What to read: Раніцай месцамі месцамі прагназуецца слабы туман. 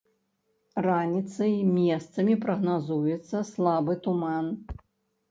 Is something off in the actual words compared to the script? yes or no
yes